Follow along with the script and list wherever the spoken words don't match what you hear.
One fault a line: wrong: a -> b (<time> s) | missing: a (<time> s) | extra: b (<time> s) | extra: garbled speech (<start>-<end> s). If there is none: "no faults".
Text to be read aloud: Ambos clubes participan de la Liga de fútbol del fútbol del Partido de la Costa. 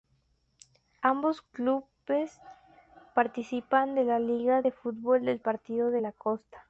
missing: fútbol del (5.4 s)